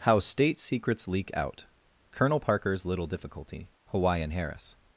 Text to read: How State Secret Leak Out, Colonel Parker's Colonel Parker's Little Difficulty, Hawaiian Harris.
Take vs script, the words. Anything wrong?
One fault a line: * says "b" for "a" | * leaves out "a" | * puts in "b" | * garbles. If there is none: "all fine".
* says "Secrets" for "Secret"
* leaves out "Colonel Parker's"